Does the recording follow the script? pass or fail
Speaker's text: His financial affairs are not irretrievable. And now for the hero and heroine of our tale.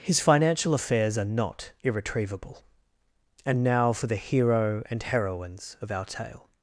fail